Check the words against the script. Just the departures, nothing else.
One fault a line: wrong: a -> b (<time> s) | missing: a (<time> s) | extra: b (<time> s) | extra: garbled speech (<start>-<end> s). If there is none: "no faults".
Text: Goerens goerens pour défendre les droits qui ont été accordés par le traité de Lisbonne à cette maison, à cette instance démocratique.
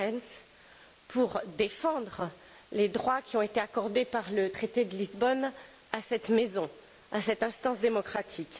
missing: goerens (0.5 s)